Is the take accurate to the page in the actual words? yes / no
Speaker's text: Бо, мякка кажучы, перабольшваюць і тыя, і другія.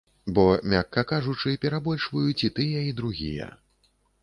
yes